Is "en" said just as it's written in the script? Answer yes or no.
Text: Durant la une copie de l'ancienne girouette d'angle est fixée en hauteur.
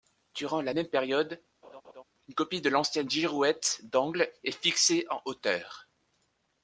yes